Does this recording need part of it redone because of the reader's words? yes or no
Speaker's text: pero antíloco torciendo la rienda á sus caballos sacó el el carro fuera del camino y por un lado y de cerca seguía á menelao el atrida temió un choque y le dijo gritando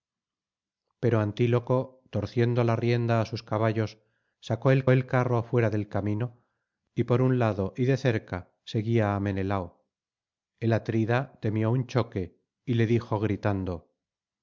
no